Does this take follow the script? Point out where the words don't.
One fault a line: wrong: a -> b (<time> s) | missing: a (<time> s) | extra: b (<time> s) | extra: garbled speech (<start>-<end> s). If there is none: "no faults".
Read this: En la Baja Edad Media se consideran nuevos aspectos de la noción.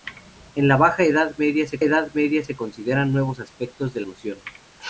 extra: Edad Media se (1.8 s)
missing: la (4.0 s)